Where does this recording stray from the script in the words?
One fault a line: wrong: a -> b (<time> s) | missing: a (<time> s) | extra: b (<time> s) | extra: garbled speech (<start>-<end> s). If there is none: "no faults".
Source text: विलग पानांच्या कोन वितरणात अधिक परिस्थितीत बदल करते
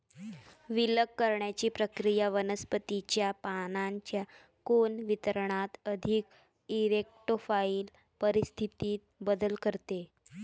extra: करण्याची प्रक्रिया वनस्पतीच्या (1.2 s)
extra: इरेक्टोफाइल (6.7 s)